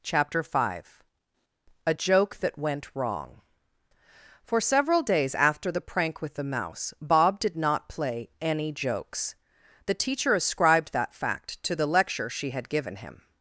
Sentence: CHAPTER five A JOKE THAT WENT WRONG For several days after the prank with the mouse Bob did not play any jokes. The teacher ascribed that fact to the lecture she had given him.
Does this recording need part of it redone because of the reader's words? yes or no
no